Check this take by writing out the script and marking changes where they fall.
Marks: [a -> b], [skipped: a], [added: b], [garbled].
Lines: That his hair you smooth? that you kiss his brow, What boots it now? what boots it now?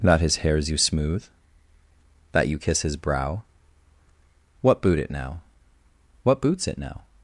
That his [hair -> hairs] you smooth? that you kiss his brow, What [boots -> boot] it now? what boots it now?